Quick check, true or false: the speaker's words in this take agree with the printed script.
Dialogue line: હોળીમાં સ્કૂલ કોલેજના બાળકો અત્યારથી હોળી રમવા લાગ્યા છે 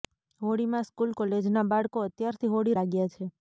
false